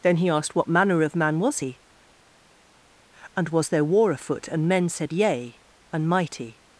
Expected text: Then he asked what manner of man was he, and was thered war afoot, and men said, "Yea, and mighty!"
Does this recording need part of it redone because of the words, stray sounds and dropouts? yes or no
yes